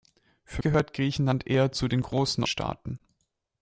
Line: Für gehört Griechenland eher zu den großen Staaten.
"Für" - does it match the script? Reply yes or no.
yes